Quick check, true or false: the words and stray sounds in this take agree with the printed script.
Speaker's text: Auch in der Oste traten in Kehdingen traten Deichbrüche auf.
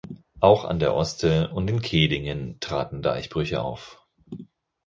false